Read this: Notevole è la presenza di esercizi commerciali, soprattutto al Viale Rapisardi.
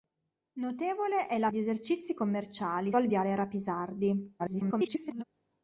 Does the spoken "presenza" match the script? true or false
false